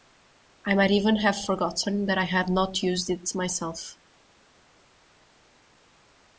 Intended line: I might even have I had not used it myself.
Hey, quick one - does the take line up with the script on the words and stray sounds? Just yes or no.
no